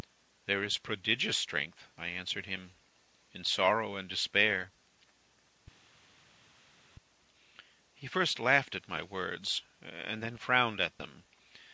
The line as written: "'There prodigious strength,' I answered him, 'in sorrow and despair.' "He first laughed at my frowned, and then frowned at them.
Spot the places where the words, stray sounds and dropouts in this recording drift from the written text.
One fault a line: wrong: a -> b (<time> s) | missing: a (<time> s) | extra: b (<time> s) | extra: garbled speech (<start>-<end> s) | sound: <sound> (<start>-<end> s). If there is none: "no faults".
extra: is (0.6 s)
wrong: frowned -> words (9.0 s)